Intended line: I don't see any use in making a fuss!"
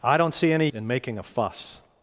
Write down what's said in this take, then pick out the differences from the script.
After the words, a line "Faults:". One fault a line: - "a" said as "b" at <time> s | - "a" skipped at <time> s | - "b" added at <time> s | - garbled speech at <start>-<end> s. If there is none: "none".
I don't see any in making a fuss!"
Faults:
- "use" skipped at 0.7 s